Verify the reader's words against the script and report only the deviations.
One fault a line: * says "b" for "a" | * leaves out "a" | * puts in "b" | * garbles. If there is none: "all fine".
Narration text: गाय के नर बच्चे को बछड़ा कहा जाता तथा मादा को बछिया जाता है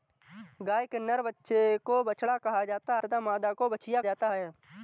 all fine